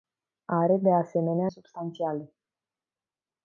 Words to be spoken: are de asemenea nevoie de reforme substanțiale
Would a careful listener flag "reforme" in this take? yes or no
yes